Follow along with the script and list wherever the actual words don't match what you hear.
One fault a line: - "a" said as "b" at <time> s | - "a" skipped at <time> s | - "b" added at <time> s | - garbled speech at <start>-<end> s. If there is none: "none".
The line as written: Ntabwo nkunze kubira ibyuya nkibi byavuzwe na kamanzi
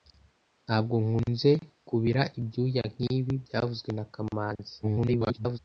- garbled speech at 4.8-5.6 s